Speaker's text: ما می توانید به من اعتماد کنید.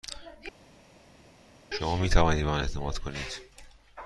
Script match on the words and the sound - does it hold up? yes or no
no